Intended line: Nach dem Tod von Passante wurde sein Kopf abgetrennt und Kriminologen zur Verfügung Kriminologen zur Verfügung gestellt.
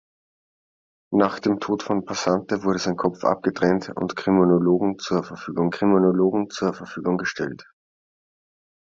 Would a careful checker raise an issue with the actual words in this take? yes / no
no